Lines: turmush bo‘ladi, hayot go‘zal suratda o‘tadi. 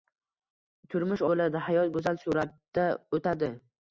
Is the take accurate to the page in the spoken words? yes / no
yes